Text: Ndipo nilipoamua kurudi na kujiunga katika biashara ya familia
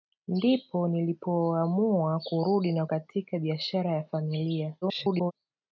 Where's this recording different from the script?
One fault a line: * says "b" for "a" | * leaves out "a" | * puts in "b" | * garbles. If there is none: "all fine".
* leaves out "kujiunga"
* garbles